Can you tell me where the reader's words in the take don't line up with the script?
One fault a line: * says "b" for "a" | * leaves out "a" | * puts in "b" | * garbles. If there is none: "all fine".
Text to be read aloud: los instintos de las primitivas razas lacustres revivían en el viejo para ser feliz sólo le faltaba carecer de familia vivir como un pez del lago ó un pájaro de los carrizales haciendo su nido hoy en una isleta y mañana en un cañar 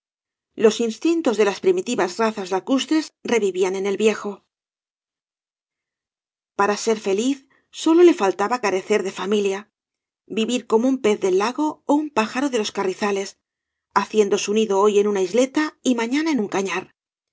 all fine